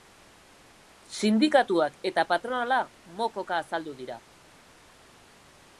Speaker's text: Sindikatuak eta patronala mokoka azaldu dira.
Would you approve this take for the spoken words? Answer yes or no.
yes